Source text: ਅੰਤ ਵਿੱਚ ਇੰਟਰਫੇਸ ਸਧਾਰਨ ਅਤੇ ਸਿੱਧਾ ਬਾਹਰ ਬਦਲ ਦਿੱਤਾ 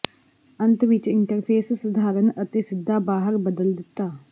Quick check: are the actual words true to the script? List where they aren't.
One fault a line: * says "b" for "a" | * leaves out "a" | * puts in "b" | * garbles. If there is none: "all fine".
all fine